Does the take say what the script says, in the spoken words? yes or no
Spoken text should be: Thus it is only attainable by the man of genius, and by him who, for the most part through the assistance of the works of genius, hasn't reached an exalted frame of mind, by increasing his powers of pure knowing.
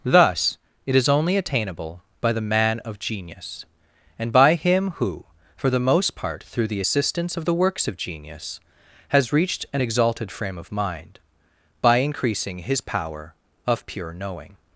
no